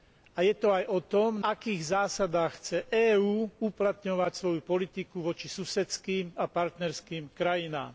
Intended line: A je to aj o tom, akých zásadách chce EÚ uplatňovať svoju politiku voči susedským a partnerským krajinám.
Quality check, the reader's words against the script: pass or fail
pass